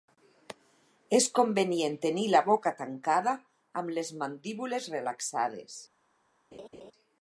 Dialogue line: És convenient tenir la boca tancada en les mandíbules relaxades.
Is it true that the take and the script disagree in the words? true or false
true